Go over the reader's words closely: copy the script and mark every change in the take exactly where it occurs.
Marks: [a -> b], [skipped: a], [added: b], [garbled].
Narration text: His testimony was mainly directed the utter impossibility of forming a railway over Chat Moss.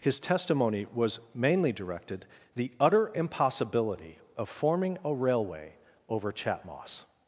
His testimony was mainly directed the utter impossibility of forming a railway over Chat Moss.